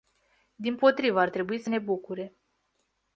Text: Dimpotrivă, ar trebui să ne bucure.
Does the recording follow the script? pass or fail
pass